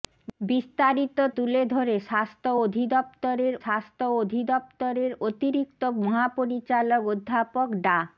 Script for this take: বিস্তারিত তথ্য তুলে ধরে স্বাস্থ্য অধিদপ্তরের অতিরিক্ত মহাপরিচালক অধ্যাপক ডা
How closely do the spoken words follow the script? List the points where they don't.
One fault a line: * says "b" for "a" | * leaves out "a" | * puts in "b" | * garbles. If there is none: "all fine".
* leaves out "তথ্য"
* puts in "স্বাস্থ্য অধিদপ্তরের"